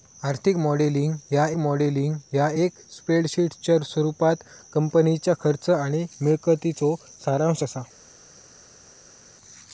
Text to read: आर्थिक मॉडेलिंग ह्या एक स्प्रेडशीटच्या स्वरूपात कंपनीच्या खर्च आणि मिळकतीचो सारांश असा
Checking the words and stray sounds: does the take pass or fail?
fail